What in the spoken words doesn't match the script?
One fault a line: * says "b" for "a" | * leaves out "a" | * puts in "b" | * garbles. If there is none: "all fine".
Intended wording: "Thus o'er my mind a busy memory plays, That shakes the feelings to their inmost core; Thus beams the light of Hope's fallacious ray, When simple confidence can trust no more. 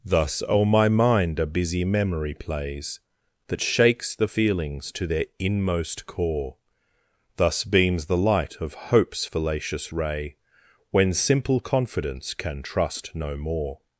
all fine